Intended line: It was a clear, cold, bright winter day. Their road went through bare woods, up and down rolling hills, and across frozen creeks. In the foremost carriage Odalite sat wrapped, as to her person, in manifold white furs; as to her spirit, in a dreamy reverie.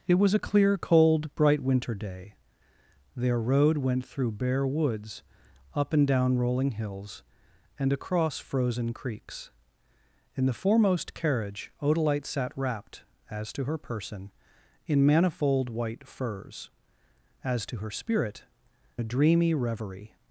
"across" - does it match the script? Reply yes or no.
yes